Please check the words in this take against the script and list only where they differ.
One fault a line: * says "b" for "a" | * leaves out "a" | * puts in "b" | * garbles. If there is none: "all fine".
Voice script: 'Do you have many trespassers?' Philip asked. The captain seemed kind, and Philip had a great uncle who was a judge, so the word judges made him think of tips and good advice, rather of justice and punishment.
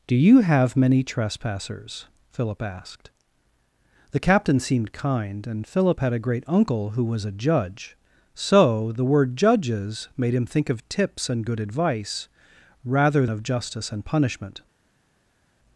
all fine